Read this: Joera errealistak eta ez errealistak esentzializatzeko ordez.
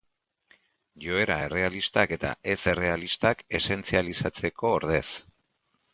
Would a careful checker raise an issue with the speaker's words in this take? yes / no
no